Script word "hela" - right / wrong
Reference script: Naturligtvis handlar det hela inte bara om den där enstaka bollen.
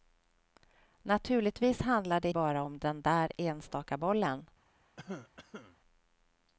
wrong